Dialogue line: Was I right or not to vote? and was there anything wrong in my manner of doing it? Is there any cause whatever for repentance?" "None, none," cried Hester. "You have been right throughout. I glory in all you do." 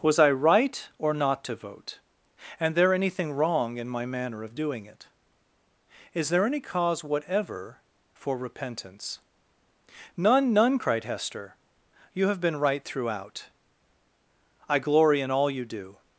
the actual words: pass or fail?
fail